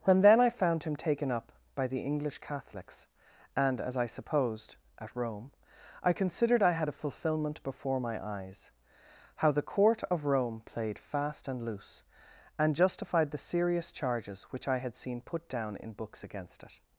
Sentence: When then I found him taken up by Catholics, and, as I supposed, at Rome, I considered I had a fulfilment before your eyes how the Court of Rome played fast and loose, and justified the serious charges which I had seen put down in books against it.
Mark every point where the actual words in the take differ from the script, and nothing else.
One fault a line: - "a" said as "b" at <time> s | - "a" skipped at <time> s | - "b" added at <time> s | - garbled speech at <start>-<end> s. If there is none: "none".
- "the English" added at 1.9 s
- "your" said as "my" at 8.0 s